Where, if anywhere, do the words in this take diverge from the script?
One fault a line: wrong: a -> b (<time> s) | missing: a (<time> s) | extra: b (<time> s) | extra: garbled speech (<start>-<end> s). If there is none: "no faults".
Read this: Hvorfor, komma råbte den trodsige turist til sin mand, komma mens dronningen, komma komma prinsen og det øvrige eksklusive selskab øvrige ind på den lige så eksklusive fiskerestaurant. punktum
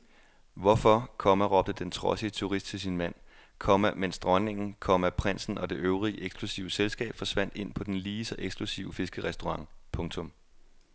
missing: komma (5.1 s)
wrong: øvrige -> forsvandt (7.1 s)